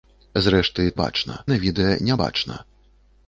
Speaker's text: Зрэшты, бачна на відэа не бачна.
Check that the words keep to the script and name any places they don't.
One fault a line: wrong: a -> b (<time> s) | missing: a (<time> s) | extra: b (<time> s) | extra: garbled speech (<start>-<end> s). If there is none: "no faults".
no faults